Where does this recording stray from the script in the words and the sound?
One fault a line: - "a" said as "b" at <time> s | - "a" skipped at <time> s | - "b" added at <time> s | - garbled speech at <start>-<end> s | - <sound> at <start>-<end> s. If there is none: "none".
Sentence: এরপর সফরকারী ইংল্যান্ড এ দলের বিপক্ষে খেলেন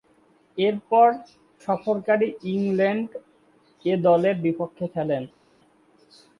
none